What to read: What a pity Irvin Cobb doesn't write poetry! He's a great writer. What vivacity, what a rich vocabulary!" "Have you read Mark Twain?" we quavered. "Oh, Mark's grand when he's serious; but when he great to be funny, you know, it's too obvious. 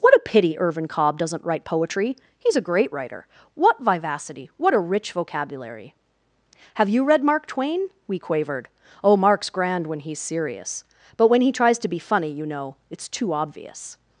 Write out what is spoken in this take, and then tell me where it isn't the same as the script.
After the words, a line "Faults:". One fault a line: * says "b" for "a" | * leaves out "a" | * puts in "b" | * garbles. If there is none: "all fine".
What a pity Irvin Cobb doesn't write poetry! He's a great writer. What vivacity, what a rich vocabulary!" "Have you read Mark Twain?" we quavered. "Oh, Mark's grand when he's serious; but when he tries to be funny, you know, it's too obvious.
Faults:
* says "tries" for "great"